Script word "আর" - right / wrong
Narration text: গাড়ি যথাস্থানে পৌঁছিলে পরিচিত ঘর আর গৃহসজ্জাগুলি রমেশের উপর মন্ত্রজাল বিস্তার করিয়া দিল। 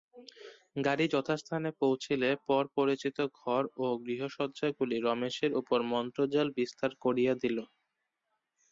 wrong